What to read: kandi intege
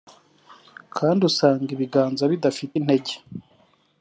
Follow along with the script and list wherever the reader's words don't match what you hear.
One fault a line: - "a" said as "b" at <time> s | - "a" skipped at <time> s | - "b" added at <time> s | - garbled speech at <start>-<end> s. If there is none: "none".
- "usanga ibiganza bidafite" added at 1.3 s